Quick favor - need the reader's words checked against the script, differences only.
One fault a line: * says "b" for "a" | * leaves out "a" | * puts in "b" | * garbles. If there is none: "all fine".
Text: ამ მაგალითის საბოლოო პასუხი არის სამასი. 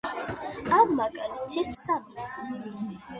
* leaves out "საბოლოო პასუხი არის"